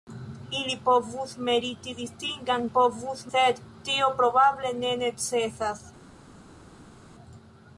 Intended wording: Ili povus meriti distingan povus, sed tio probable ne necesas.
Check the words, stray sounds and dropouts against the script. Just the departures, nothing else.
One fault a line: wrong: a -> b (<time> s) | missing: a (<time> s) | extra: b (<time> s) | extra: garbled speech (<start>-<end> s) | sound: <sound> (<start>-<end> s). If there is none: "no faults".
no faults